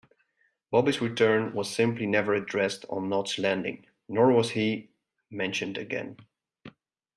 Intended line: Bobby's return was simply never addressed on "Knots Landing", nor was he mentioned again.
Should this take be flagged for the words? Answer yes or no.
no